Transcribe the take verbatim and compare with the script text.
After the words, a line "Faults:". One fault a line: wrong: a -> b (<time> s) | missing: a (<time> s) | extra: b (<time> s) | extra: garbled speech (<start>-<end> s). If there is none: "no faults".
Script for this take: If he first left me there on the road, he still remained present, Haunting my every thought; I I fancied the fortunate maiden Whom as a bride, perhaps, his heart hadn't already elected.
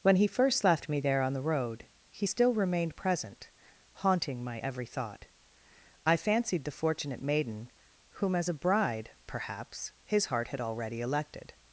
When he first left me there on the road, he still remained present, Haunting my every thought; I fancied the fortunate maiden Whom as a bride, perhaps, his heart had already elected.
Faults:
wrong: If -> When (0.0 s)
missing: I (6.2 s)
wrong: hadn't -> had (10.5 s)